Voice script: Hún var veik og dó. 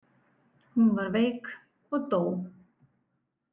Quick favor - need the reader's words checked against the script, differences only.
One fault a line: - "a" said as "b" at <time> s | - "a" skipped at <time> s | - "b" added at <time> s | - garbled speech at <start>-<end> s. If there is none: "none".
none